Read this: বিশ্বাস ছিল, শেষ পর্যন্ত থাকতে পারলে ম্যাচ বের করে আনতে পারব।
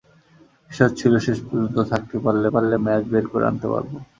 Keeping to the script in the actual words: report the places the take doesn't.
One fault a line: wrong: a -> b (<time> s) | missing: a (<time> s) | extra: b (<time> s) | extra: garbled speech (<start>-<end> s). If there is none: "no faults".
extra: পারলে (2.5 s)